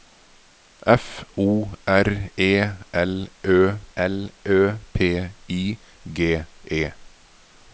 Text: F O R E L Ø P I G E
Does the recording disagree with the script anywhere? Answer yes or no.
yes